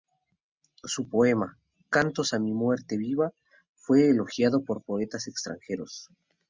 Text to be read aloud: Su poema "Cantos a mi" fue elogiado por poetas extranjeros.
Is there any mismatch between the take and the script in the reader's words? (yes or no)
yes